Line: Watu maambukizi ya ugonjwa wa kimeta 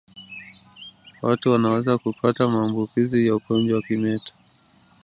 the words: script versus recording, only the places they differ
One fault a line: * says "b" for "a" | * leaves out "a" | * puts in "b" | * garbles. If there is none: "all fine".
* puts in "wanaweza kupata"